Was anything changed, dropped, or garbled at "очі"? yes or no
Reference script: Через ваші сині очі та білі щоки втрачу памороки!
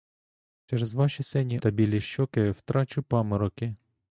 yes